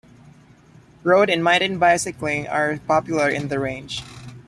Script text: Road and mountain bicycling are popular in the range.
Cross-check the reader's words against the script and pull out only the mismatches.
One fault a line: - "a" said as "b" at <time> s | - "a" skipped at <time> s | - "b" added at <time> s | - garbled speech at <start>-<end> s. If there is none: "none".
none